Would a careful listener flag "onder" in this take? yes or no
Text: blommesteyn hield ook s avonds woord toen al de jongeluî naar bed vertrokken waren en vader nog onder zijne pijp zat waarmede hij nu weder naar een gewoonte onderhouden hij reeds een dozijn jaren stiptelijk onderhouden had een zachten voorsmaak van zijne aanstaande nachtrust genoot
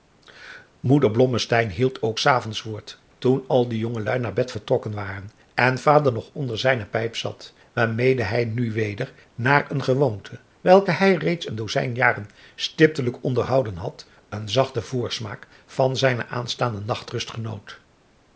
no